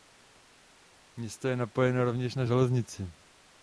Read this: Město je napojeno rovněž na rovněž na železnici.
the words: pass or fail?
fail